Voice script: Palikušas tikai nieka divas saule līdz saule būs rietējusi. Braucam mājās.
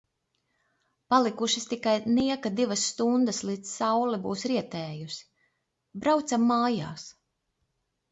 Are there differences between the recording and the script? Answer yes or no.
yes